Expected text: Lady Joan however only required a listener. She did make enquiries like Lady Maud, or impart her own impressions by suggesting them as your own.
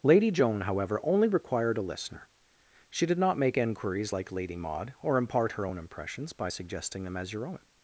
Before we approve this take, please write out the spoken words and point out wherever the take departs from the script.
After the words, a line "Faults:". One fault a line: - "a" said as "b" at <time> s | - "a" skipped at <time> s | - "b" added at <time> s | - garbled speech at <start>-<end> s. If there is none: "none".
Lady Joan however only required a listener. She did not make enquiries like Lady Maud, or impart her own impressions by suggesting them as your own.
Faults:
- "not" added at 3.2 s